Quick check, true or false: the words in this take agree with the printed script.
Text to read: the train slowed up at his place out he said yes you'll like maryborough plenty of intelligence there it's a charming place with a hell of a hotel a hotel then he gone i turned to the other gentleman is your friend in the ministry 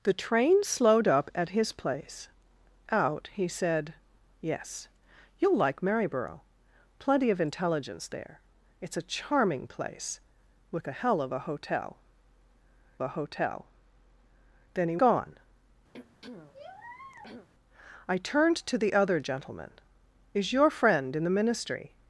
true